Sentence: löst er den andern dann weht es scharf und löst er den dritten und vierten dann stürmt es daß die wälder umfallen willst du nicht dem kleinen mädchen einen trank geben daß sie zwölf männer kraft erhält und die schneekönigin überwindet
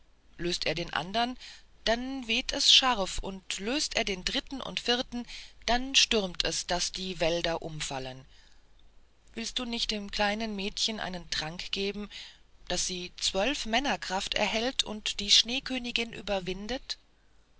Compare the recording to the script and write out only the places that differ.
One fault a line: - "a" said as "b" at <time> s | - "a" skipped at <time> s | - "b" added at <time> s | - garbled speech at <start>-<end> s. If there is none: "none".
none